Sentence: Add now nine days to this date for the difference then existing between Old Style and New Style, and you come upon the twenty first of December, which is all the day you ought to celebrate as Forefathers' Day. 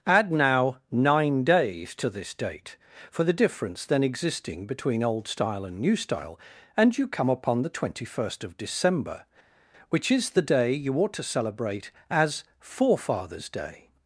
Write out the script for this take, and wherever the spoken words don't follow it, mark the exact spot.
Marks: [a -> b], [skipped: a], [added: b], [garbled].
Add now nine days to this date for the difference then existing between Old Style and New Style, and you come upon the twenty first of December, which is [skipped: all] the day you ought to celebrate as Forefathers' Day.